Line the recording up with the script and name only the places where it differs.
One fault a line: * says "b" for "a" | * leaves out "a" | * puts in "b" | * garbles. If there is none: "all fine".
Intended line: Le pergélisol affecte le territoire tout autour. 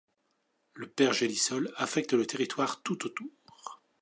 all fine